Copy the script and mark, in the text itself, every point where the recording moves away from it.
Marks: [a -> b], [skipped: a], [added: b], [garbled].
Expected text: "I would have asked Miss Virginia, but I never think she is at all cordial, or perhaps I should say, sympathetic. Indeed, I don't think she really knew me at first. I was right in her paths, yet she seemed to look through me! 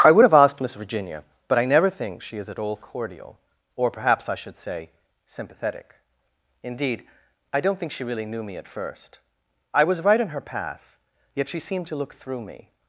"I would have asked Miss Virginia, but I never think she is at all cordial, or perhaps I should say, sympathetic. Indeed, I don't think she really knew me at first. I was right in her [paths, -> path] yet she seemed to look through me!